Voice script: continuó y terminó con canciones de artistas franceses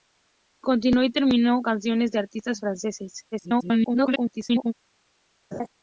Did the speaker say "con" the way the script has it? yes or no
no